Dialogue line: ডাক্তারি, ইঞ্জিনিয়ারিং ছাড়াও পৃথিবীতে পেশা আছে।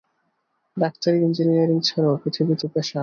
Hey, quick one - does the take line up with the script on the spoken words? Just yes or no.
yes